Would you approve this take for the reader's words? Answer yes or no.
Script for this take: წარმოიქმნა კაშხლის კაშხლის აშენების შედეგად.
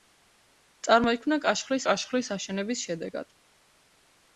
yes